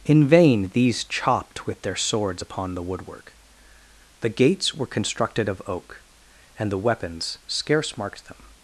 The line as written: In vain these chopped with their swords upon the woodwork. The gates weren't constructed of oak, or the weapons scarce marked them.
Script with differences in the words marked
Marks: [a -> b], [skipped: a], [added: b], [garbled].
In vain these chopped with their swords upon the woodwork. The gates [weren't -> were] constructed of oak, [or -> and] the weapons scarce marked them.